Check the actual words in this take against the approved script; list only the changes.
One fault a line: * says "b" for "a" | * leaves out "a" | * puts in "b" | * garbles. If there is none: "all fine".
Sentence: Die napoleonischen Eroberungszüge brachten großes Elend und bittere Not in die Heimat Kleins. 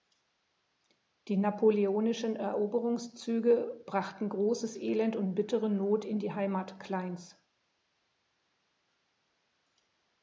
all fine